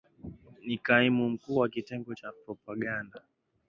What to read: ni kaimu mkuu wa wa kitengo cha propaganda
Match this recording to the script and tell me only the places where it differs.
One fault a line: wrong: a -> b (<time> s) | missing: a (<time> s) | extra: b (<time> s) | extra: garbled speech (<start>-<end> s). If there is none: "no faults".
missing: wa (1.7 s)